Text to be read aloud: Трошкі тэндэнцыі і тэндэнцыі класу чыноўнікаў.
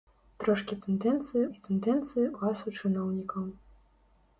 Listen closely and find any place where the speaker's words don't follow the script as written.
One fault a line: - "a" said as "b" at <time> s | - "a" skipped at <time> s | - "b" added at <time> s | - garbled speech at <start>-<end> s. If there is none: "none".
none